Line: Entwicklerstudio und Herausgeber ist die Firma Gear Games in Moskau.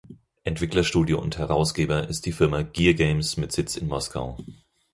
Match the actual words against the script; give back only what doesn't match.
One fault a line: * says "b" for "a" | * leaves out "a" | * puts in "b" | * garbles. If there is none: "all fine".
* puts in "mit Sitz"